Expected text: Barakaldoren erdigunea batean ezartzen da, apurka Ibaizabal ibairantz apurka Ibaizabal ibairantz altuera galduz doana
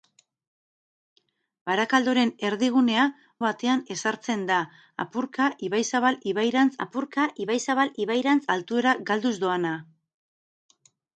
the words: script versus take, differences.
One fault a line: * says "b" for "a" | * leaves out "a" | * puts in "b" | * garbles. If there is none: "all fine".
all fine